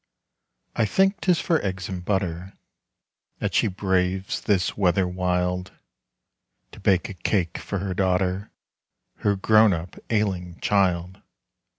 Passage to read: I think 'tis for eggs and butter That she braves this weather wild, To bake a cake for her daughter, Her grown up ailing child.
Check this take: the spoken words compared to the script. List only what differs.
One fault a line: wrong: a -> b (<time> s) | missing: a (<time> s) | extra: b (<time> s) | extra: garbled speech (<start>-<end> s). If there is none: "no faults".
no faults